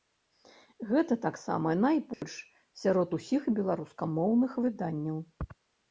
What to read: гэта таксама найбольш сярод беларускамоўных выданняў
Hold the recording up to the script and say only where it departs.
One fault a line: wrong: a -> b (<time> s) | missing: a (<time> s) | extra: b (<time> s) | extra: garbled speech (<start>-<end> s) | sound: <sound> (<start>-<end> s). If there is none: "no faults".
sound: dropout (2.1-2.2 s)
extra: усіх (3.2 s)